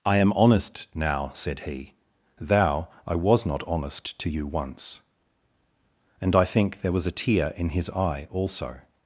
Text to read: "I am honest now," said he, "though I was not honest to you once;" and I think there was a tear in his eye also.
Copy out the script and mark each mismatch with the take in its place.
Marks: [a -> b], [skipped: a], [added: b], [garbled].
"I am honest now," said he, ["though -> thou] I was not honest to you once;" and I think there was a tear in his eye also.